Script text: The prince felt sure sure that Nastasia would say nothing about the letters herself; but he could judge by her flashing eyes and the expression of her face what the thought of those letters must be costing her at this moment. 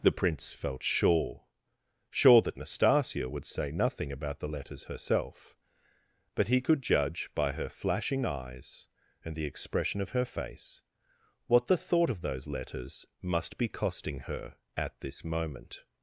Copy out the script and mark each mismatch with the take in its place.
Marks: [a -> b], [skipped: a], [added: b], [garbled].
The prince felt sure sure that Nastasia would say nothing about the letters herself; but he could judge by her flashing eyes and the expression of her face what the thought of those letters must be costing her at this moment.